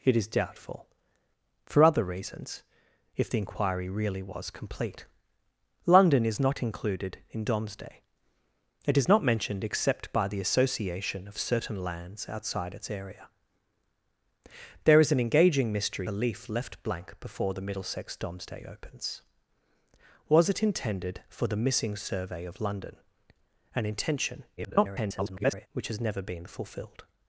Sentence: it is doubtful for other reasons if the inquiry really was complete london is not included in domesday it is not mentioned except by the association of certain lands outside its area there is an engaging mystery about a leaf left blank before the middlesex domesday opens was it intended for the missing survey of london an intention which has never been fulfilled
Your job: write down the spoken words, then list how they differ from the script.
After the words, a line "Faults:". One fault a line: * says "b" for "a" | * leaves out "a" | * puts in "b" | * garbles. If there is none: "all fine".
it is doubtful for other reasons if the inquiry really was complete london is not included in domesday it is not mentioned except by the association of certain lands outside its area there is an engaging mystery a leaf left blank before the middlesex domesday opens was it intended for the missing survey of london an intention [garbled] which has never been fulfilled
Faults:
* leaves out "about"
* garbles